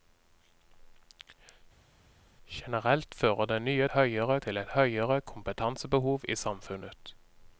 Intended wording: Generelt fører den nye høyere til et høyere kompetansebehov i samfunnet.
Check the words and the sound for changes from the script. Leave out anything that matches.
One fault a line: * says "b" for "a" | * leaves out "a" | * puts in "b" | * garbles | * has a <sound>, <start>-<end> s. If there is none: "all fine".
all fine